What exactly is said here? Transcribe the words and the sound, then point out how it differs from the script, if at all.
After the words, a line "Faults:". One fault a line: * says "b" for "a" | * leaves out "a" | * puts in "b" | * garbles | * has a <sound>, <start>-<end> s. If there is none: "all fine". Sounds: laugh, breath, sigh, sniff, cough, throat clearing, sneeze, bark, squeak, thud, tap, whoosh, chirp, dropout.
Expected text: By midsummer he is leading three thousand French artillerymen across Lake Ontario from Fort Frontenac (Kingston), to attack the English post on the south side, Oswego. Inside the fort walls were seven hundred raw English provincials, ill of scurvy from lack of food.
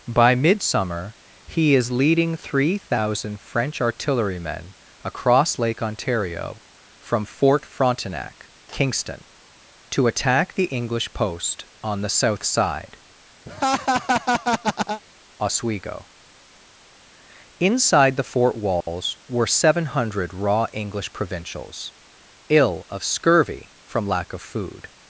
By midsummer he is leading three thousand French artillerymen across Lake Ontario from Fort Frontenac (Kingston), to attack the English post on the south side, Oswego. Inside the fort walls were seven hundred raw English provincials, ill of scurvy from lack of food.
Faults:
* has a laugh, 13.5-15.0 s
* has a dropout, 18.8-18.9 s